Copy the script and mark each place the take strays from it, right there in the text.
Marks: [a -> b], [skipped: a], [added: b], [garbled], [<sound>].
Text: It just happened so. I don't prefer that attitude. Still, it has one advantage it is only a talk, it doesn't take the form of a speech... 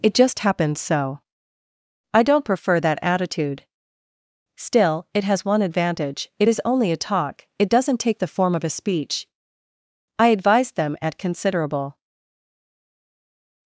It just happened so. I don't prefer that attitude. Still, it has one advantage it is only a talk, it doesn't take the form of a speech... [added: I advised them at considerable]